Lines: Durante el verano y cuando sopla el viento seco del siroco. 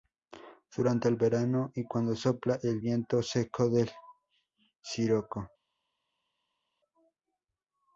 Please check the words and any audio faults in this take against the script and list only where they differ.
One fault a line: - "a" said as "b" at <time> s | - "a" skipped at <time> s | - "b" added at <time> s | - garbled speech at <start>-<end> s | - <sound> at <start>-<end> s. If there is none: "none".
none